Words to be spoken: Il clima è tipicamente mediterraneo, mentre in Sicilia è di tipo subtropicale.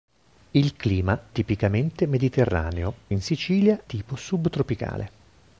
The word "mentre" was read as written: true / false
false